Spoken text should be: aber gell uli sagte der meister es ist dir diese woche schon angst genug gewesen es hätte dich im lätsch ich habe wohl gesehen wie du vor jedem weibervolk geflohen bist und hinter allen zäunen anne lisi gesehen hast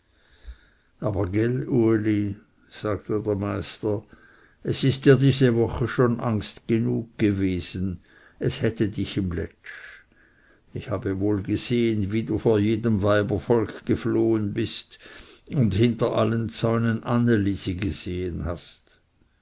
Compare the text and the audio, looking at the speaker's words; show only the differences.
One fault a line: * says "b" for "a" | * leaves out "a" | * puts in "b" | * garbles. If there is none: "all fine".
all fine